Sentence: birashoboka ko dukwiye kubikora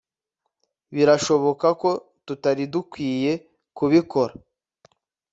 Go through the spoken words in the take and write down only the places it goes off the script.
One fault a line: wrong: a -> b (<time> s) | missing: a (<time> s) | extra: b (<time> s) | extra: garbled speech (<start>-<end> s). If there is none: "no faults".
extra: tutari (2.3 s)